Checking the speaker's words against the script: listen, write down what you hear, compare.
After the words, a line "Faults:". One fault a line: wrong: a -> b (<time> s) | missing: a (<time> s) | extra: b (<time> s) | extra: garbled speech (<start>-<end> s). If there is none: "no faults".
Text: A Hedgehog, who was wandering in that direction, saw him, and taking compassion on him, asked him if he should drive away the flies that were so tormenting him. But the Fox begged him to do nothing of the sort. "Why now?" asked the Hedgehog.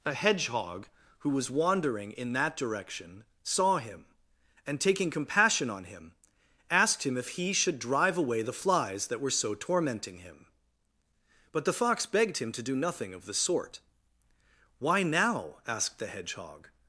A Hedgehog, who was wandering in that direction, saw him, and taking compassion on him, asked him if he should drive away the flies that were so tormenting him. But the Fox begged him to do nothing of the sort. "Why now?" asked the Hedgehog.
Faults:
no faults